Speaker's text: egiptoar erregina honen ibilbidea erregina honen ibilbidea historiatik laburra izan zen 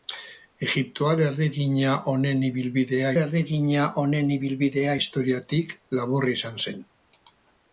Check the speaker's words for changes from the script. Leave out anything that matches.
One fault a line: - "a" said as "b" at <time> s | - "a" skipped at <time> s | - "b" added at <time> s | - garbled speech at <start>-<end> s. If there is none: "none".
none